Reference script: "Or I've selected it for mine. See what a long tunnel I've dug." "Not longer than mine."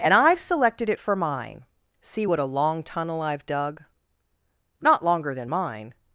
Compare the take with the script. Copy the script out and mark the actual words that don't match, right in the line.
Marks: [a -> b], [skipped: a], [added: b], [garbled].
["Or -> And] I've selected it for mine. See what a long tunnel I've dug." "Not longer than mine."